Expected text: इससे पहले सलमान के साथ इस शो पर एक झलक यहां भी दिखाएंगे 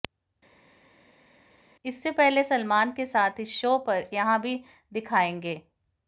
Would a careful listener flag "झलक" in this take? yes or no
yes